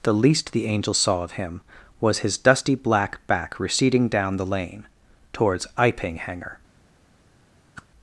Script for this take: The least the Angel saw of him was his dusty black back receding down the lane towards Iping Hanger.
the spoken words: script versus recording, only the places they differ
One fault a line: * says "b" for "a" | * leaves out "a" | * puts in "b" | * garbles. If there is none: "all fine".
all fine